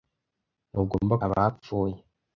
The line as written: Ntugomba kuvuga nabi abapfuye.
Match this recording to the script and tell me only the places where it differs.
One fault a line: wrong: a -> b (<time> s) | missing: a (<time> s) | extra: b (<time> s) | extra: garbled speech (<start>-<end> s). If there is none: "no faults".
missing: kuvuga nabi (1.1 s)